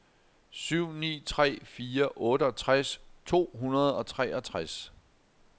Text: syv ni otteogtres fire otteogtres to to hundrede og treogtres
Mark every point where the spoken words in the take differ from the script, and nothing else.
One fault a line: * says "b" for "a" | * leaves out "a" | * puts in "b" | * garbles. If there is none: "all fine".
* says "tre" for "otteogtres"
* leaves out "to"